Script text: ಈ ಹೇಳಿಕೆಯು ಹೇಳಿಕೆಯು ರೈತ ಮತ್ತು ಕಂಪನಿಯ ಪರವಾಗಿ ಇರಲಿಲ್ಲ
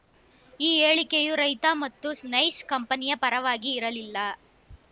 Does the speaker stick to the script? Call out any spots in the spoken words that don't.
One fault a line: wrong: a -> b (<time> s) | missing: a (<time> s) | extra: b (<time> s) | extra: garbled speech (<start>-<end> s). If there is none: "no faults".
missing: ಹೇಳಿಕೆಯು (1.3 s)
extra: ನೈಸ್ (2.3 s)